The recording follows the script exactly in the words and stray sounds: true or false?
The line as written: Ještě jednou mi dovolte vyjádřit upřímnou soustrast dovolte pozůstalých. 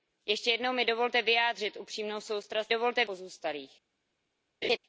false